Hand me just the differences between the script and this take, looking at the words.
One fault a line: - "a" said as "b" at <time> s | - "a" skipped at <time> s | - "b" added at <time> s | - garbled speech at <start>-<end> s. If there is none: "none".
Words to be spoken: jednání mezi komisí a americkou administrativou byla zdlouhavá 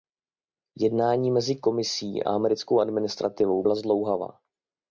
none